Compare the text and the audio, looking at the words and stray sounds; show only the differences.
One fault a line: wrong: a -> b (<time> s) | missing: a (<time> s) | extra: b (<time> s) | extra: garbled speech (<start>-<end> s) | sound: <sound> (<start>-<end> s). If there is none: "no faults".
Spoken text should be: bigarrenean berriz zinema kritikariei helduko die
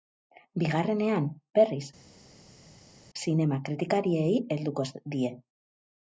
no faults